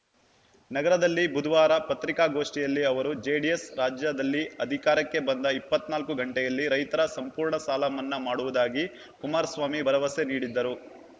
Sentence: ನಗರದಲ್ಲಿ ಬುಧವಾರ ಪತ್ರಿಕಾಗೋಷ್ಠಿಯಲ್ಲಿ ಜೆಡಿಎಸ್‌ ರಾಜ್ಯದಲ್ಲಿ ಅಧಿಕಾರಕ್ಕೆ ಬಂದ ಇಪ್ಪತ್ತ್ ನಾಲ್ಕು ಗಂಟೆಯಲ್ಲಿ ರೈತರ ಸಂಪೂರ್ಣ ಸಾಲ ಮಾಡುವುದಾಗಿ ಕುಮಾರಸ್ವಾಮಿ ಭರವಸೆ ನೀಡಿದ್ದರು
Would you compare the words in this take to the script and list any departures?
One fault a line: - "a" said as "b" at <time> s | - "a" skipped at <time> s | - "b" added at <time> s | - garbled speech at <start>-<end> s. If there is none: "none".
- "ಅವರು" added at 2.8 s
- "ಮನ್ನಾ" added at 8.0 s